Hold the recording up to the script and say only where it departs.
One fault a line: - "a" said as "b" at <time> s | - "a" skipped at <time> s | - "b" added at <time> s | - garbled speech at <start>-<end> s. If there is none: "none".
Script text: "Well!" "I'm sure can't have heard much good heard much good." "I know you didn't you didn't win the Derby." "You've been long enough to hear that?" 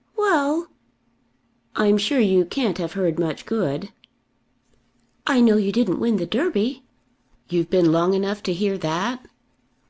- "you" added at 2.2 s
- "heard much good" skipped at 3.9 s
- "you didn't" skipped at 6.0 s